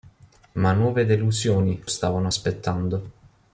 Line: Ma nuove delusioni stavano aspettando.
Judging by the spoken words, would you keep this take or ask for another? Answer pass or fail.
pass